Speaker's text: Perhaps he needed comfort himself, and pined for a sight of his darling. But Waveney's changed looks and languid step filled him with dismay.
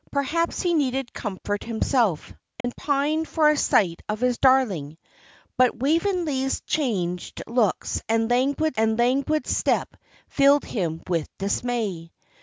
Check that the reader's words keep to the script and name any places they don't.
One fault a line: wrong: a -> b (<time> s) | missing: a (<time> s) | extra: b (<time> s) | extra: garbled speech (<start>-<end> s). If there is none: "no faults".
extra: and languid (8.8 s)